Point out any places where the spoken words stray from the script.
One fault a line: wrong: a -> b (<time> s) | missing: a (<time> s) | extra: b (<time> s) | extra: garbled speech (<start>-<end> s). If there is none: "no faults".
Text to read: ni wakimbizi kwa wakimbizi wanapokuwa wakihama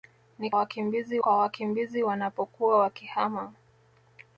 no faults